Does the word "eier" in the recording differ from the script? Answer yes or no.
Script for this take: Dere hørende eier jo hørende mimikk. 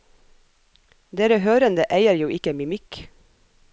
no